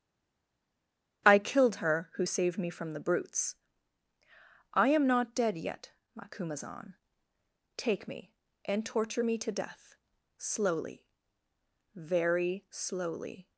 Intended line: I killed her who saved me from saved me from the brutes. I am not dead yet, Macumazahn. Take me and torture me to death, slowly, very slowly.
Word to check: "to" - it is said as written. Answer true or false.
true